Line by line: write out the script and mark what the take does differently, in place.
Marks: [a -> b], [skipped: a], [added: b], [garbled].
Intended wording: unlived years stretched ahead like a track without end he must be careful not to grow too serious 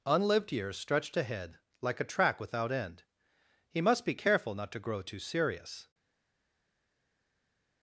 unlived years stretched ahead like a track without end he must be careful not to grow too serious